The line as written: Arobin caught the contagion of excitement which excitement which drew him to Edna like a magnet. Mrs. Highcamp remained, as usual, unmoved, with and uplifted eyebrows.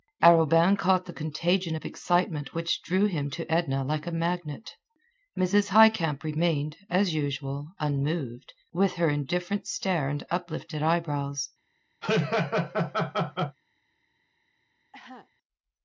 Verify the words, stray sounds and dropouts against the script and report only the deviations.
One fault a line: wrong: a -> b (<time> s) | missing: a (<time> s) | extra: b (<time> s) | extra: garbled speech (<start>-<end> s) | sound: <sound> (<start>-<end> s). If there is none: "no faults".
missing: excitement which (2.8 s)
extra: her indifferent stare (8.9 s)
sound: laugh (12.0-13.6 s)
sound: cough (14.9-15.3 s)